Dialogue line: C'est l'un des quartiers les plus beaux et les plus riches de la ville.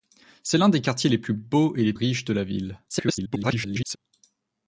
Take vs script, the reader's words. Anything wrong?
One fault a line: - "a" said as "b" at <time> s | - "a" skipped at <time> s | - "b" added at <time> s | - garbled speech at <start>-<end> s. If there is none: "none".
- "plus" skipped at 1.9 s
- garbled speech at 2.9-4.0 s